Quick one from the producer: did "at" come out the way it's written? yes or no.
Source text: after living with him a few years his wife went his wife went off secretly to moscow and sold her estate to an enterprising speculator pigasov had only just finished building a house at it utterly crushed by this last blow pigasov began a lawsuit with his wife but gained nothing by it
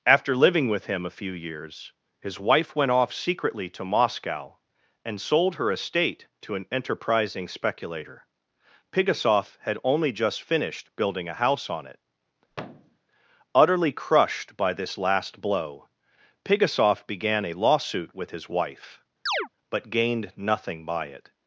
no